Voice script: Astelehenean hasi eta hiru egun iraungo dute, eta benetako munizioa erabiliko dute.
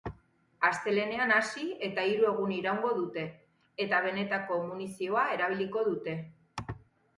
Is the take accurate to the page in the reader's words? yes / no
yes